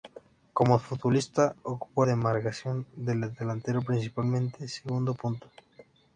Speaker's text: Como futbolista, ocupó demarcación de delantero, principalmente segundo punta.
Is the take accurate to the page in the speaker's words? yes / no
yes